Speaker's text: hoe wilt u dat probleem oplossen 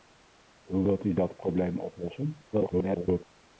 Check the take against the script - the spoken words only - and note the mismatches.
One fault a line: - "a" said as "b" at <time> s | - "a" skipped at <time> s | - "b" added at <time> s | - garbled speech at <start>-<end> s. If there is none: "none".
- garbled speech at 2.5-3.2 s